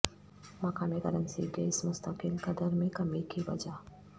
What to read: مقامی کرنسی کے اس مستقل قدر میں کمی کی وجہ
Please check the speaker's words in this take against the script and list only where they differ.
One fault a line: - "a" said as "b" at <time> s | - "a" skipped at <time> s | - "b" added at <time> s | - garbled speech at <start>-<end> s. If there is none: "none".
none